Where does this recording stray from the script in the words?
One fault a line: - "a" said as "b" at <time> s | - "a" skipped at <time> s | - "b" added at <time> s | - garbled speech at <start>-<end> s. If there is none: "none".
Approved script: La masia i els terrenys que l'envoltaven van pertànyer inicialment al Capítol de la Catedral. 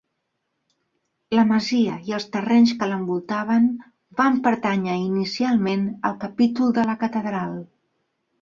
none